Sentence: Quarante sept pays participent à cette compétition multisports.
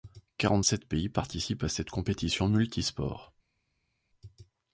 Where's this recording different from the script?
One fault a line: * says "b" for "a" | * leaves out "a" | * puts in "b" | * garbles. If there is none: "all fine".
all fine